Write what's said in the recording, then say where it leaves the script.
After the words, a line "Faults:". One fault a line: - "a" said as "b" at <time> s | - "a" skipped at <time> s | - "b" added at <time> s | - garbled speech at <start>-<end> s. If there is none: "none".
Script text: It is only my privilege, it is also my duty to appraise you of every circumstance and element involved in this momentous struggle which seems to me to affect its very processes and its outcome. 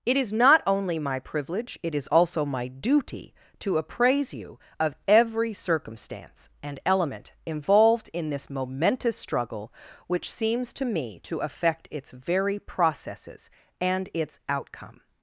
It is not only my privilege, it is also my duty to appraise you of every circumstance and element involved in this momentous struggle which seems to me to affect its very processes and its outcome.
Faults:
- "not" added at 0.3 s